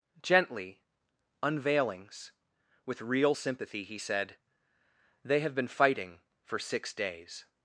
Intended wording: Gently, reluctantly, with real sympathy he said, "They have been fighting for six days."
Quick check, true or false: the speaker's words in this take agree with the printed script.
false